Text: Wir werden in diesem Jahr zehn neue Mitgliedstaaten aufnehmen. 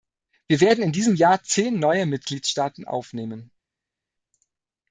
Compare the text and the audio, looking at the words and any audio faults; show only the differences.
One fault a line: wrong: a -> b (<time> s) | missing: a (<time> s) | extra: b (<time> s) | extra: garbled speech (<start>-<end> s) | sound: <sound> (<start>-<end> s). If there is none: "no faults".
no faults